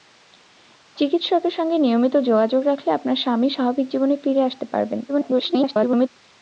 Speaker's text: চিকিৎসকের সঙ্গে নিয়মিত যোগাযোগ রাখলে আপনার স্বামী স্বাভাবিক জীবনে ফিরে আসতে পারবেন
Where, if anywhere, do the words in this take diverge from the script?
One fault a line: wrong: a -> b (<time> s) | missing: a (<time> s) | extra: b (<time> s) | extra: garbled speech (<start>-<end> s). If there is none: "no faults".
extra: garbled speech (5.1-6.1 s)